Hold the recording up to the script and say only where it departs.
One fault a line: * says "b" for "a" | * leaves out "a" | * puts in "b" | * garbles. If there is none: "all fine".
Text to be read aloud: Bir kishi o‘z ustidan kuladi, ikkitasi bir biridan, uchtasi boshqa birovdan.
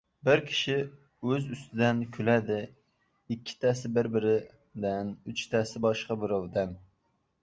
all fine